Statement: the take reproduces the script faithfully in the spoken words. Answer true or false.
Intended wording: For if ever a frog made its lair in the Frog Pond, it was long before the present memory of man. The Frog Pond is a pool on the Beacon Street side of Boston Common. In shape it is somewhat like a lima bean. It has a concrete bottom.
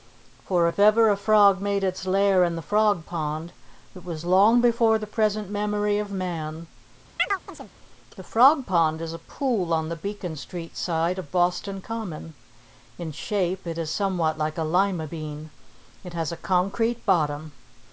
true